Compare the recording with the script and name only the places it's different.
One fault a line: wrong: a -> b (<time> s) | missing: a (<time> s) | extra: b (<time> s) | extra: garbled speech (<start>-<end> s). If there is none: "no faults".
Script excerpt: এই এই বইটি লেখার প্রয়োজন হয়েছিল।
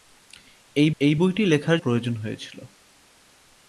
no faults